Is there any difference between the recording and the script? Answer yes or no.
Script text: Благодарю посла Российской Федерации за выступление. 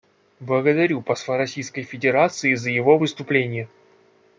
yes